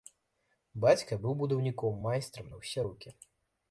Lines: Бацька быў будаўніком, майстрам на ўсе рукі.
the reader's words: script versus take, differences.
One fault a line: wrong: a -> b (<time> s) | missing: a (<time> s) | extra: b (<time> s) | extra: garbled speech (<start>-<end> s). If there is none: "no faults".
no faults